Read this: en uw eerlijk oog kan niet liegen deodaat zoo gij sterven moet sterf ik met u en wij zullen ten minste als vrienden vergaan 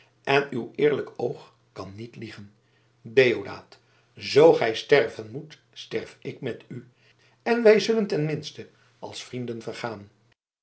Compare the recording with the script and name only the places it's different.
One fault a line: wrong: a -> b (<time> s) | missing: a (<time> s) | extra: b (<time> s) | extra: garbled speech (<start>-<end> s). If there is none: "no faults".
no faults